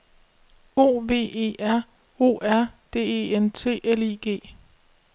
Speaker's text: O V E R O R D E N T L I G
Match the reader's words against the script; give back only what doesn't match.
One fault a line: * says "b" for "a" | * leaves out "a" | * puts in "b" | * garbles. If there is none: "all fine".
all fine